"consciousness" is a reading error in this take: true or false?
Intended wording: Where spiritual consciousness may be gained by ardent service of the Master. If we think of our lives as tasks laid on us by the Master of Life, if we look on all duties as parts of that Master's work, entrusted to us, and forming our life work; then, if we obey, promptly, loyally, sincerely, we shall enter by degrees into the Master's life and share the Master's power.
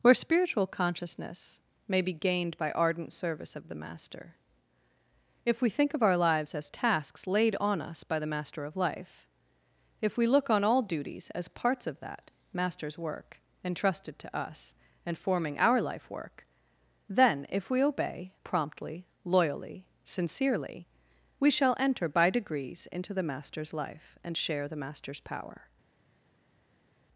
false